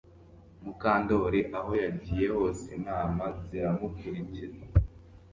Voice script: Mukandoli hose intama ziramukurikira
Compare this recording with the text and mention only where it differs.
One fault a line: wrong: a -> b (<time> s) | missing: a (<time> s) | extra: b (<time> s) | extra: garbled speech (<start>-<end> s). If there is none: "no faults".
extra: aho yagiye (1.6 s)